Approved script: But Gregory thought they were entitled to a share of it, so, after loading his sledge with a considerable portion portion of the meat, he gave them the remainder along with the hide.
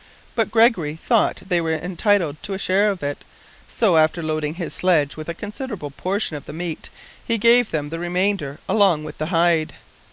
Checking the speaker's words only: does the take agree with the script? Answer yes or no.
no